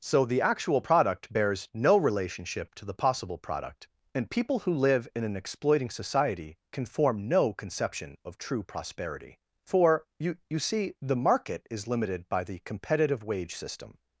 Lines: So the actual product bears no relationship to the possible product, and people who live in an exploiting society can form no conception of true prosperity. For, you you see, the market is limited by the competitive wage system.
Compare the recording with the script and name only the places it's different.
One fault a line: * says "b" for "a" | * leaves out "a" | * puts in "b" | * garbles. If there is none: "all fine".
all fine